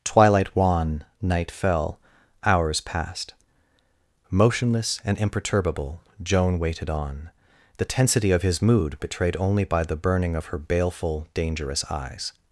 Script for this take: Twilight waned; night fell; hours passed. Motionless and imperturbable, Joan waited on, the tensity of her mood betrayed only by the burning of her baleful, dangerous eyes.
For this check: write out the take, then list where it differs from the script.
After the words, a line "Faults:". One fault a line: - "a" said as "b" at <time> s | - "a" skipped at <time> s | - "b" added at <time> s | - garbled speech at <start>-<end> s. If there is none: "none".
Twilight wan; night fell; hours passed. Motionless and imperturbable, Joan waited on, the tensity of his mood betrayed only by the burning of her baleful, dangerous eyes.
Faults:
- "waned" said as "wan" at 0.6 s
- "her" said as "his" at 8.4 s